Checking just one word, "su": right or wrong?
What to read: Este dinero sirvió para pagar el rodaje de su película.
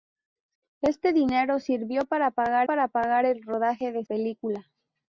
wrong